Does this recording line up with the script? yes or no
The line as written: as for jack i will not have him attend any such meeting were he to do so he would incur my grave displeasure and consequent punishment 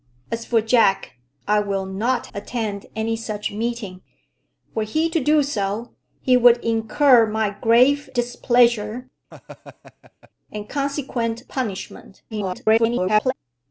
no